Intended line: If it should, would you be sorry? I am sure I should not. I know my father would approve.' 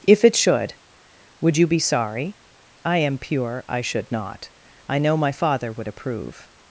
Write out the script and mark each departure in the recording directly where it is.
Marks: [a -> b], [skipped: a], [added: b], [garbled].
If it should, would you be sorry? I am [sure -> pure] I should not. I know my father would approve.'